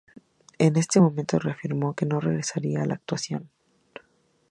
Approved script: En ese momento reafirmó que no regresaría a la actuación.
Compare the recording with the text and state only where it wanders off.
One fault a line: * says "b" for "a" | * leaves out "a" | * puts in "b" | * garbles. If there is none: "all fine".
all fine